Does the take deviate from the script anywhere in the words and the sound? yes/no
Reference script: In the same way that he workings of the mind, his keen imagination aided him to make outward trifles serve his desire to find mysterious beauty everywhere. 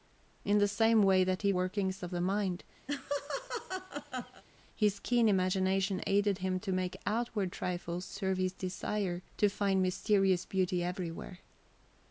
yes